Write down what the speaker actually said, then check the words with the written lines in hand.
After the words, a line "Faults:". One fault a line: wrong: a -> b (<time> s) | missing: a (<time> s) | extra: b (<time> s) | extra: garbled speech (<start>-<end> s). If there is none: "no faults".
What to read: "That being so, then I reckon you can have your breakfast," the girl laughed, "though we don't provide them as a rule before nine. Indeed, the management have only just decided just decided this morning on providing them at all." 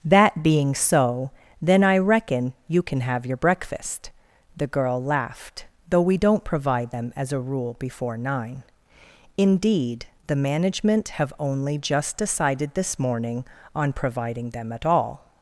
"That being so, then I reckon you can have your breakfast," the girl laughed, "though we don't provide them as a rule before nine. Indeed, the management have only just decided this morning on providing them at all."
Faults:
missing: just decided (12.7 s)